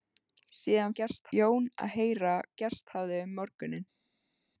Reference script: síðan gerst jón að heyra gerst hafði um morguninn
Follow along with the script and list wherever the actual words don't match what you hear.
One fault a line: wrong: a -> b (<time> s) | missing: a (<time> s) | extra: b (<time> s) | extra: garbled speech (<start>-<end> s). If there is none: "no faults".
no faults